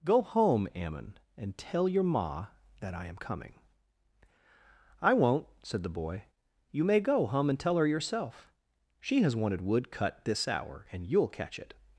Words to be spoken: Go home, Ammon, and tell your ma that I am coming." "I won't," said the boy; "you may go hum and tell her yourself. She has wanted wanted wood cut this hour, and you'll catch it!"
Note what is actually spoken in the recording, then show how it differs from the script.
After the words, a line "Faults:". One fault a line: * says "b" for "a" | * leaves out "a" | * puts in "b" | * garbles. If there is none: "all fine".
Go home, Ammon, and tell your ma that I am coming." "I won't," said the boy; "you may go hum and tell her yourself. She has wanted wood cut this hour, and you'll catch it!"
Faults:
* leaves out "wanted"